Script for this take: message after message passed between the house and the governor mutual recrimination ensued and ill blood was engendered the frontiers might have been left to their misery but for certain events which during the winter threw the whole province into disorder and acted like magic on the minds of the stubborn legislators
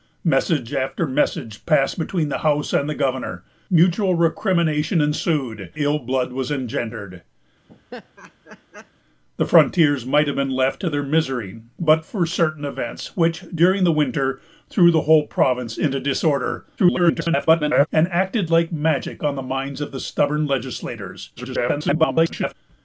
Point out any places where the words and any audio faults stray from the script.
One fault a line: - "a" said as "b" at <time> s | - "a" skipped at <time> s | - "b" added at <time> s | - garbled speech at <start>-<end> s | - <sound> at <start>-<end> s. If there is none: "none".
- "and" skipped at 5.7 s
- laugh at 7.7-8.9 s
- garbled speech at 16.8-17.9 s
- garbled speech at 21.4-22.5 s